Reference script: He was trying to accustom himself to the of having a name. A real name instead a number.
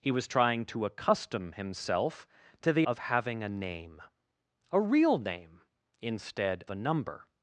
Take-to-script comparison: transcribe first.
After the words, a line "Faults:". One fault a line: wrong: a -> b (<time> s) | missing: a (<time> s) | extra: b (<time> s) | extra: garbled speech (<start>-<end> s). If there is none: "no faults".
He was trying to accustom himself to the of having a name. A real name instead a number.
Faults:
no faults